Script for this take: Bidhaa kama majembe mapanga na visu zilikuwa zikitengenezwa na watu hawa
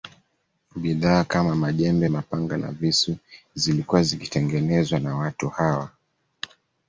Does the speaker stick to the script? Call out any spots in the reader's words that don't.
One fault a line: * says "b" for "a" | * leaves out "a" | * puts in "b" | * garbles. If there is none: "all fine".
all fine